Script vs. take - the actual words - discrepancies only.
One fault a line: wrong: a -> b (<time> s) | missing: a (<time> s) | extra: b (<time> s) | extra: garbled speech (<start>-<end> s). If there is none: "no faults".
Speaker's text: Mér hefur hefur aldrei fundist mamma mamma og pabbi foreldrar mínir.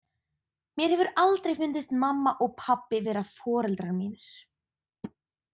missing: hefur (1.1 s)
missing: mamma (2.3 s)
extra: vera (3.1 s)